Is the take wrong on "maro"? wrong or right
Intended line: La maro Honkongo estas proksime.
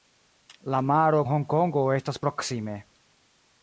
right